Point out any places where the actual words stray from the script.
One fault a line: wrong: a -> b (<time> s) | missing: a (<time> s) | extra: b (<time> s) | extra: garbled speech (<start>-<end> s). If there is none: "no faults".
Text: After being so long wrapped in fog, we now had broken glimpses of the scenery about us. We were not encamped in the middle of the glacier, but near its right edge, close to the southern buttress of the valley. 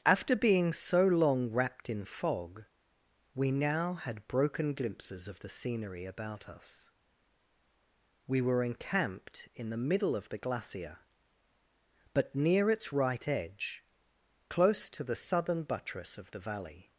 missing: not (8.6 s)